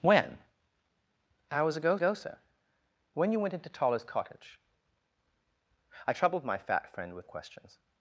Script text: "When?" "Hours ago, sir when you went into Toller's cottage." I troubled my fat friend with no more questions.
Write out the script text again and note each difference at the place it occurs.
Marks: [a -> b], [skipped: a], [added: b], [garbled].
"When?" "Hours ago, [added: ago] sir when you went into Toller's cottage." I troubled my fat friend with [skipped: no more] questions.